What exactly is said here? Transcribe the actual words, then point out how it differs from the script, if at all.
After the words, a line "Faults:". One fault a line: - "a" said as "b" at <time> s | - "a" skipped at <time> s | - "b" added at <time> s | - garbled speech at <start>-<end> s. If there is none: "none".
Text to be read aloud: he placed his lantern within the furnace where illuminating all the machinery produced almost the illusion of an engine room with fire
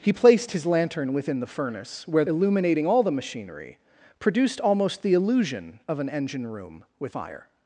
he placed his lantern within the furnace where illuminating all the machinery produced almost the illusion of an engine room with fire
Faults:
none